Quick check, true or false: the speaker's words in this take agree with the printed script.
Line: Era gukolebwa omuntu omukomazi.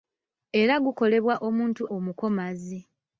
true